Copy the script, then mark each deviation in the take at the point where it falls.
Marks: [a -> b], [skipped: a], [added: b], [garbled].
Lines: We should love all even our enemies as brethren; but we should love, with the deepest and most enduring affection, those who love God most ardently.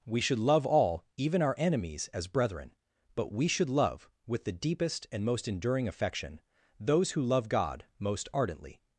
We should love all even our enemies as brethren; but we should love, with the deepest and most enduring affection, those who love God most ardently.